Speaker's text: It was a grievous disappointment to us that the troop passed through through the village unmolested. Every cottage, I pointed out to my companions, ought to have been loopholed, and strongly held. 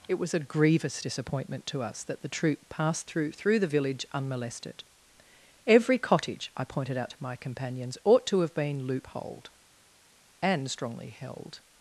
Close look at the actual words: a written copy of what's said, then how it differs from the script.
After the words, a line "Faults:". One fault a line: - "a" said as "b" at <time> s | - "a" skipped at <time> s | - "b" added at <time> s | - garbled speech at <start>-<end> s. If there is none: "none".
It was a grievous disappointment to us that the troop passed through through the village unmolested. Every cottage, I pointed out to my companions, ought to have been loopholed, and strongly held.
Faults:
none